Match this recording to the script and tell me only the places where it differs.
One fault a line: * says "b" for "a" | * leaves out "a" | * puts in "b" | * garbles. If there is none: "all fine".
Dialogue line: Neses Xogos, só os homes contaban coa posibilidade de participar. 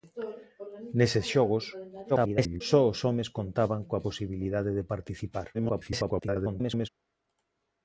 * garbles
* garbles